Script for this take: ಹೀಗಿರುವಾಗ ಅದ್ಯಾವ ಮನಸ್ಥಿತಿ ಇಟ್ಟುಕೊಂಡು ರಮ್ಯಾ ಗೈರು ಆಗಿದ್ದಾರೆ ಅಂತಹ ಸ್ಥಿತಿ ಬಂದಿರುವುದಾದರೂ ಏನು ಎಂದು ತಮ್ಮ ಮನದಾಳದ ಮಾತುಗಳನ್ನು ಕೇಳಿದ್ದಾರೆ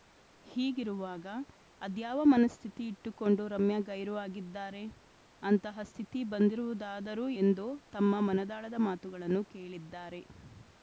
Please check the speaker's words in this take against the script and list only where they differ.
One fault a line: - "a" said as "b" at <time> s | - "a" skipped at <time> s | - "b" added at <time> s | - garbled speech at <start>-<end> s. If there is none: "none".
- "ಏನು" skipped at 7.3 s